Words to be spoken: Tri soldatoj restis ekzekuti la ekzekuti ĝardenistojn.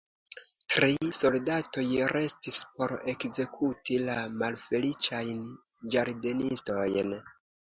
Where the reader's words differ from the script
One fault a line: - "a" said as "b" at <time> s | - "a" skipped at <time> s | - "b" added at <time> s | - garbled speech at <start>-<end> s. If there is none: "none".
- "por" added at 2.8 s
- "ekzekuti" said as "malfeliĉajn" at 4.4 s